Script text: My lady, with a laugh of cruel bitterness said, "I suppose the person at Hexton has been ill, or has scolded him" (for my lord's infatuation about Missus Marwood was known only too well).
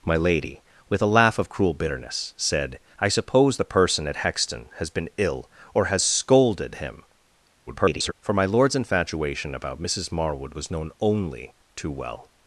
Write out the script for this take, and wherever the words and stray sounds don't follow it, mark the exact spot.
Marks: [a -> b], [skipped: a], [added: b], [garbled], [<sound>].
My lady, with a laugh of cruel bitterness said, "I suppose the person at Hexton has been ill, or has scolded him" [garbled] (for my lord's infatuation about Missus Marwood was known only too well).